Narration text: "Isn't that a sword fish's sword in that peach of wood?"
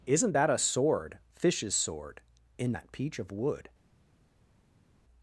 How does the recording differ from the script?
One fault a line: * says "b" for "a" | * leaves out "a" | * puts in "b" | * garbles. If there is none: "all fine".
all fine